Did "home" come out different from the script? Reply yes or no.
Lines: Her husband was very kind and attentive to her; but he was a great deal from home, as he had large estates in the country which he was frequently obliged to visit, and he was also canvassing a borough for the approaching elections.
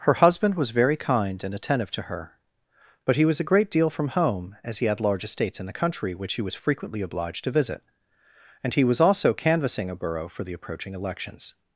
no